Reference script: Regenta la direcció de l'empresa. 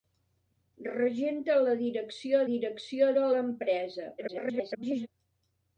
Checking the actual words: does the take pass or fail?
fail